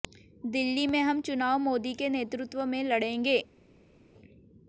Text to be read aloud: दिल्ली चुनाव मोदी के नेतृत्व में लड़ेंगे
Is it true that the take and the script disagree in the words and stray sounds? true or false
true